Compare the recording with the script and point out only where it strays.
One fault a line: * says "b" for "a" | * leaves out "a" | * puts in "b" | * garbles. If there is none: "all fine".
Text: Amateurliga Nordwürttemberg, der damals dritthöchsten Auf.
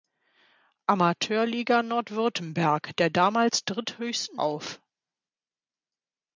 all fine